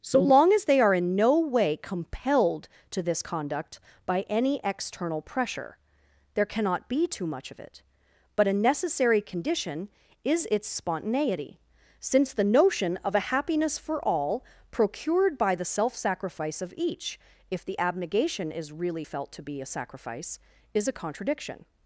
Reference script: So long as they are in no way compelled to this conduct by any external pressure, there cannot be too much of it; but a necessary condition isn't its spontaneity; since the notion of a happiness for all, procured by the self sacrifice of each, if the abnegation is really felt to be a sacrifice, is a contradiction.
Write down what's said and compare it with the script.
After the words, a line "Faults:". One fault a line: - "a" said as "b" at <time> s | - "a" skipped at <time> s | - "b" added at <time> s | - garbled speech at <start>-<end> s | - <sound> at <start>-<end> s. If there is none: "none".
So long as they are in no way compelled to this conduct by any external pressure, there cannot be too much of it; but a necessary condition is its spontaneity; since the notion of a happiness for all, procured by the self sacrifice of each, if the abnegation is really felt to be a sacrifice, is a contradiction.
Faults:
- "isn't" said as "is" at 10.2 s